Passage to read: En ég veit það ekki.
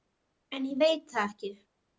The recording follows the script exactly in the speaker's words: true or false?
true